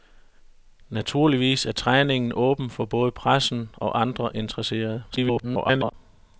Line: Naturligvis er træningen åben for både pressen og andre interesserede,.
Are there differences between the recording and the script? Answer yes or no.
yes